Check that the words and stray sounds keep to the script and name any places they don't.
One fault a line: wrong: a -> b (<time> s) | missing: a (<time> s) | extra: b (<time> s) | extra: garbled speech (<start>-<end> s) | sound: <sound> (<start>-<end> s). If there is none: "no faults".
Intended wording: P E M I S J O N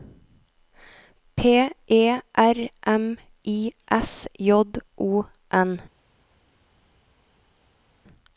extra: R (2.4 s)